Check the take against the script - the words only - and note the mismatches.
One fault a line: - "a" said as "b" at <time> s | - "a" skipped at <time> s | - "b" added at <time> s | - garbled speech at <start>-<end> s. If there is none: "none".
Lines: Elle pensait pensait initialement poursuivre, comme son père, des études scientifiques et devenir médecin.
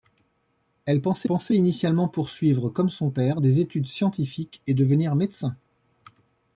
none